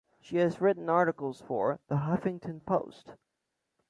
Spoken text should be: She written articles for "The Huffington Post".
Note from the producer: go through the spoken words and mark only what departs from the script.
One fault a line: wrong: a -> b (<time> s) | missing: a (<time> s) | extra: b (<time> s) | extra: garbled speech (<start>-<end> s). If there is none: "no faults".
extra: has (0.4 s)